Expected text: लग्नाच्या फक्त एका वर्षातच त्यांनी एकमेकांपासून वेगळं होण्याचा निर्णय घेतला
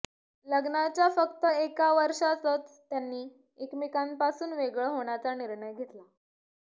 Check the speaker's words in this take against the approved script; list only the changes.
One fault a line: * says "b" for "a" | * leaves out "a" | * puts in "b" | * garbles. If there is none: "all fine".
all fine